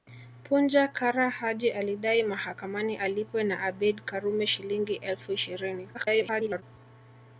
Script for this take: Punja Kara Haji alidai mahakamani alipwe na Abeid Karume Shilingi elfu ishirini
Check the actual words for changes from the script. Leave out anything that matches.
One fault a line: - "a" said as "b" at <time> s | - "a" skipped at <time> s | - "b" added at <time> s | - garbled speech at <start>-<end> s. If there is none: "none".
- garbled speech at 5.9-6.6 s